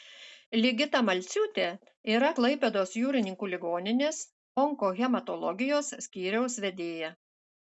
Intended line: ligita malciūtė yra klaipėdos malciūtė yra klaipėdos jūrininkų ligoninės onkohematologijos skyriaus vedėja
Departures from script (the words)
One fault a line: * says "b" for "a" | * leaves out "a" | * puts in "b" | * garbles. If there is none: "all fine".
* leaves out "malciūtė yra klaipėdos"